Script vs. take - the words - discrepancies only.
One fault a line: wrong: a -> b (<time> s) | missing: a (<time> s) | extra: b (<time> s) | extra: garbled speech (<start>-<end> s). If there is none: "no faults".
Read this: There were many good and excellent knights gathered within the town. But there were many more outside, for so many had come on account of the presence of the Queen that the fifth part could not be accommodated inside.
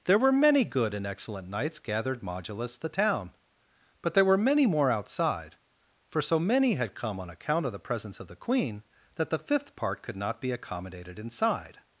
wrong: within -> modulus (2.2 s)